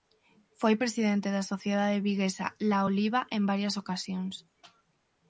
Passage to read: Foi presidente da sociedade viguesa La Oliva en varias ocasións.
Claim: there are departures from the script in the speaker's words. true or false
false